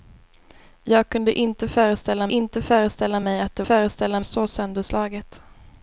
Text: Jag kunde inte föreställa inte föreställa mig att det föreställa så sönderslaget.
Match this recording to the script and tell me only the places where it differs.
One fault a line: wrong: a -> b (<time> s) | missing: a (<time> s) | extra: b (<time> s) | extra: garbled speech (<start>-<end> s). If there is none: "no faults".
no faults